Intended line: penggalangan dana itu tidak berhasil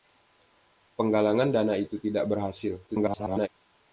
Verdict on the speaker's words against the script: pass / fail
fail